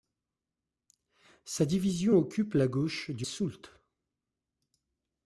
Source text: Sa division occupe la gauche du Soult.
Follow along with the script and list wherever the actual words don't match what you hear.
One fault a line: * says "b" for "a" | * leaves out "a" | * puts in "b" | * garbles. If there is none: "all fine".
all fine